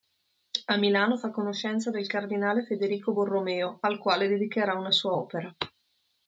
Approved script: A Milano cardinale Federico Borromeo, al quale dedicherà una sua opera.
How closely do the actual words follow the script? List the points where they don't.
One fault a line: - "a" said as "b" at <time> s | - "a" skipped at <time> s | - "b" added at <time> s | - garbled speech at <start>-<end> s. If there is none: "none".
- "fa conoscenza del" added at 1.1 s